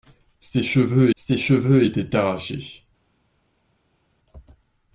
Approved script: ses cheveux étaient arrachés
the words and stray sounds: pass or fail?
fail